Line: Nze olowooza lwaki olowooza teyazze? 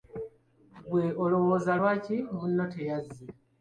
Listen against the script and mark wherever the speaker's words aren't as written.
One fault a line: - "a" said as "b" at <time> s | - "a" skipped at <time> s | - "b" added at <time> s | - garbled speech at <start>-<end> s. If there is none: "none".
- "Nze" said as "Ggwe" at 0.8 s
- "olowooza" said as "munno" at 2.3 s